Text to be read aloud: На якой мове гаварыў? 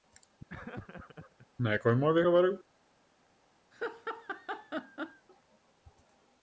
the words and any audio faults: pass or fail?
fail